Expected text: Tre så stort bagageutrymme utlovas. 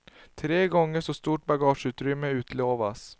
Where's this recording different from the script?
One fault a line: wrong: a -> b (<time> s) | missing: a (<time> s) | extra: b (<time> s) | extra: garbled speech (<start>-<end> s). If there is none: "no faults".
extra: gånger (0.7 s)